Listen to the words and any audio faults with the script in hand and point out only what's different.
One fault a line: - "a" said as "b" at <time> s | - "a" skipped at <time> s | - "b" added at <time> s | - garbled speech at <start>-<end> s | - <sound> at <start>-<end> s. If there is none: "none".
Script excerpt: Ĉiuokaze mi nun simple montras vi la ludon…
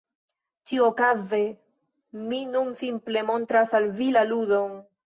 - "al" added at 3.8 s